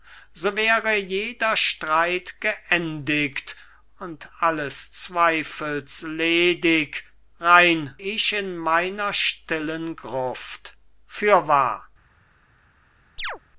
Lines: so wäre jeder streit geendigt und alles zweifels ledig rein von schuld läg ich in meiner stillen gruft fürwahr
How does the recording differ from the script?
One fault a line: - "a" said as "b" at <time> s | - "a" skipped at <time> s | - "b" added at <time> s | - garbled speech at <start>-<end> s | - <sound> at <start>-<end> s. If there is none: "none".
- "von schuld läg" skipped at 8.0 s
- chirp at 13.2-13.4 s